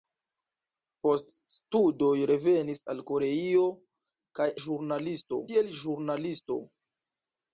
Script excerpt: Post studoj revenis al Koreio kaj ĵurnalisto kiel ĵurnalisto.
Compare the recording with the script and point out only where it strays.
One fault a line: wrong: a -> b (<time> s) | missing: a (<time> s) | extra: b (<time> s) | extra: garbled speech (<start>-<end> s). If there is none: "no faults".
no faults